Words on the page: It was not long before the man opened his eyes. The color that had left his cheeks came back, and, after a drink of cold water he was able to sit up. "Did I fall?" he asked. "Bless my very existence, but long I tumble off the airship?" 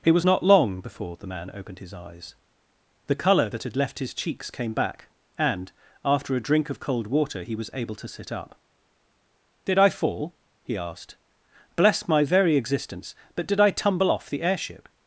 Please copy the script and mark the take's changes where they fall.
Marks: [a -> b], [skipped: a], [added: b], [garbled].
It was not long before the man opened his eyes. The color that had left his cheeks came back, and, after a drink of cold water he was able to sit up. "Did I fall?" he asked. "Bless my very existence, but [long -> did] I tumble off the airship?"